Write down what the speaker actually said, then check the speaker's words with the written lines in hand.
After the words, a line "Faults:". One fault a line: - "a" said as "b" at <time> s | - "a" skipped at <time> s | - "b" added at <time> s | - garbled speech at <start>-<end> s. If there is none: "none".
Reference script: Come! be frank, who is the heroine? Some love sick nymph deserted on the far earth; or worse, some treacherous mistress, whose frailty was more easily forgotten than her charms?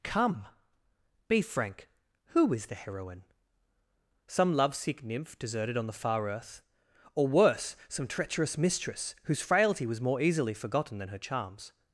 Come! be frank, who is the heroine? Some love sick nymph deserted on the far earth; or worse, some treacherous mistress, whose frailty was more easily forgotten than her charms?
Faults:
none